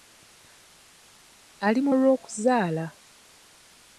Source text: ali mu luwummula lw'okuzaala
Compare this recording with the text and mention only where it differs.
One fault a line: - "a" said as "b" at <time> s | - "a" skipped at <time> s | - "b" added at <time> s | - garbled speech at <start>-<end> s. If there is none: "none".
- "luwummula" skipped at 1.9 s